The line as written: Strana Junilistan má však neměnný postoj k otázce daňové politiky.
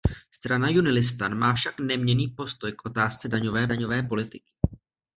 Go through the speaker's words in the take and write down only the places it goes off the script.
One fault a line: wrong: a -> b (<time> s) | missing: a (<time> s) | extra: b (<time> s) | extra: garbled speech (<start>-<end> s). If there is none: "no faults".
extra: daňové (3.7 s)